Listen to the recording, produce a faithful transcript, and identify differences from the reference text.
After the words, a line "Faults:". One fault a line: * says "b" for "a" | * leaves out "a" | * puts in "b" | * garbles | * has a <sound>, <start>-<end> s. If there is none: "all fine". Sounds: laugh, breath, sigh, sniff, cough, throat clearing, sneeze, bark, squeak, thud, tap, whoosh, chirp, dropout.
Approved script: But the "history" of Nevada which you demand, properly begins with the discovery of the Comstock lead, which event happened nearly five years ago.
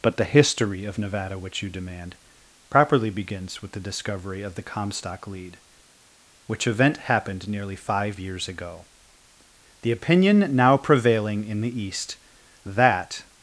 But the "history" of Nevada which you demand, properly begins with the discovery of the Comstock lead, which event happened nearly five years ago. The opinion now prevailing in the East that
Faults:
* puts in "The opinion now prevailing in the East that"